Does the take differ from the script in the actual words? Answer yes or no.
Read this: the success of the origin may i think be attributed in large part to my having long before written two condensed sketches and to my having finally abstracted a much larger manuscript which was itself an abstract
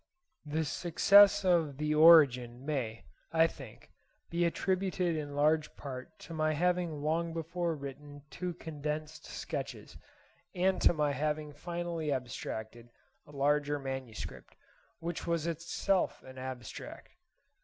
yes